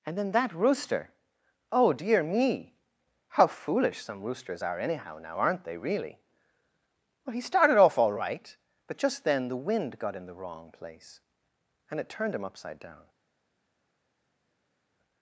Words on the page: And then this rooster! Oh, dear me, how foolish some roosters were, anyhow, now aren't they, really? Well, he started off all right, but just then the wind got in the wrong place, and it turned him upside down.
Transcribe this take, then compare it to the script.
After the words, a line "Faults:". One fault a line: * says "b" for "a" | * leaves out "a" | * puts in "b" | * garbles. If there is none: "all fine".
And then that rooster! Oh, dear me, how foolish some roosters are, anyhow, now aren't they, really? Well, he started off all right, but just then the wind got in the wrong place, and it turned him upside down.
Faults:
* says "that" for "this"
* says "are" for "were"